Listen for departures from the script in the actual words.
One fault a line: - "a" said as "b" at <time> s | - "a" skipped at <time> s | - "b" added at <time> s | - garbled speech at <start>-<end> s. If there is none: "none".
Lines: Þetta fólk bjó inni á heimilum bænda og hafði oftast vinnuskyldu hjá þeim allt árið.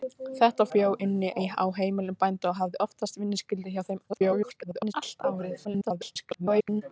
- "fólk" skipped at 0.7 s
- garbled speech at 4.1-4.9 s
- garbled speech at 5.6-6.8 s